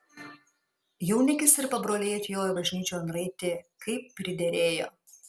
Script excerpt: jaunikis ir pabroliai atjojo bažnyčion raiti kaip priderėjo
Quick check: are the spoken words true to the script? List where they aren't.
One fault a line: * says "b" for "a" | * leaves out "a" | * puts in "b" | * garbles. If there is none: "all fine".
all fine